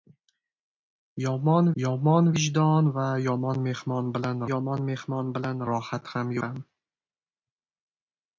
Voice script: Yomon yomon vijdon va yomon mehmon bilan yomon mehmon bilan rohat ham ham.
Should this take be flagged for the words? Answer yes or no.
no